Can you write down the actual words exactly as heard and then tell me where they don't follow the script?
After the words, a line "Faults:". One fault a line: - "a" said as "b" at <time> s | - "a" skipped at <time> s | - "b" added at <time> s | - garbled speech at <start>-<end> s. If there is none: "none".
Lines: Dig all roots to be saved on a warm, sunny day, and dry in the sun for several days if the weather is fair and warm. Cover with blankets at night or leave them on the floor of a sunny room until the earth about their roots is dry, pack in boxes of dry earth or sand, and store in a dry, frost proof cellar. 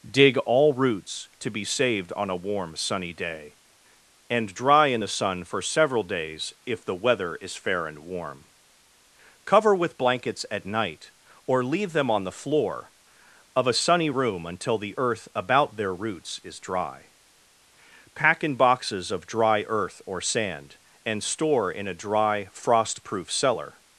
Dig all roots to be saved on a warm, sunny day, and dry in the sun for several days if the weather is fair and warm. Cover with blankets at night or leave them on the floor of a sunny room until the earth about their roots is dry, pack in boxes of dry earth or sand, and store in a dry, frost proof cellar.
Faults:
none